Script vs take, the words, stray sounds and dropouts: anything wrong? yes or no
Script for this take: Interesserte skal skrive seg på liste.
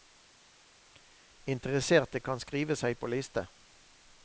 yes